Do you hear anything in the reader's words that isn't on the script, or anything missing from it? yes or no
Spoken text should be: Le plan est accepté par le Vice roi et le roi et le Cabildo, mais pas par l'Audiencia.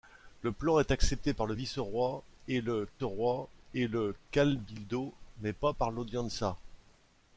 no